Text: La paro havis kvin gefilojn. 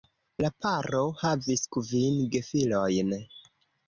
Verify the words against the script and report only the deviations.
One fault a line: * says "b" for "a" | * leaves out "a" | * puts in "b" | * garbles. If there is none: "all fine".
all fine